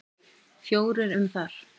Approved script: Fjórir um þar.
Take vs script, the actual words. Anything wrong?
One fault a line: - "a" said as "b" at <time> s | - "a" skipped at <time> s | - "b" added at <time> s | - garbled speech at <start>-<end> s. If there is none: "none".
none